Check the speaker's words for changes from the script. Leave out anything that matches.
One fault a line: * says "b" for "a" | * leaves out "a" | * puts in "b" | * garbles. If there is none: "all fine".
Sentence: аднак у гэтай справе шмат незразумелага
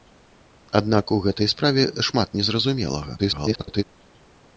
* garbles